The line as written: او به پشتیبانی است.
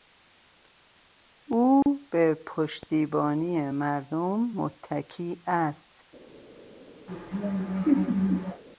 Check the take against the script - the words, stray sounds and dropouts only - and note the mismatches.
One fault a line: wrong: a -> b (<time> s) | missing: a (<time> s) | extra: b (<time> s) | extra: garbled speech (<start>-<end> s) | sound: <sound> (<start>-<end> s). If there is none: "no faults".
sound: dropout (1.8-1.9 s)
extra: مردم متکی (3.7 s)
sound: laugh (7.1-8.6 s)